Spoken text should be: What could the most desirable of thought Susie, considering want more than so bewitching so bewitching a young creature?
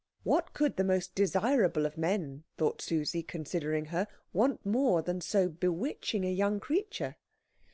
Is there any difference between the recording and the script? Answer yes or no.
yes